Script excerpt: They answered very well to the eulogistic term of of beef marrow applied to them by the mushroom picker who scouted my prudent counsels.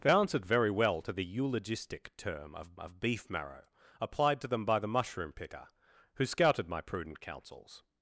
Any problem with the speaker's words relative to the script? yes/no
no